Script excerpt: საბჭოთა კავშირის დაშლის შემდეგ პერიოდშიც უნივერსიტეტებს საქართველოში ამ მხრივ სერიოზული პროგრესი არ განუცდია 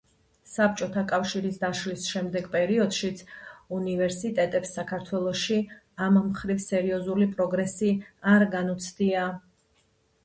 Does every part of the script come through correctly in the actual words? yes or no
yes